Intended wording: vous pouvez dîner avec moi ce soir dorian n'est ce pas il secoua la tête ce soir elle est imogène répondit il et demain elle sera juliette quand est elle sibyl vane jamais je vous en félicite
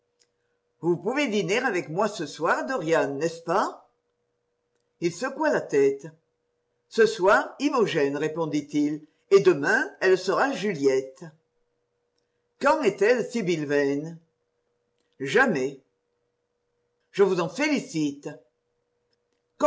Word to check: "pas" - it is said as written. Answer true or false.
true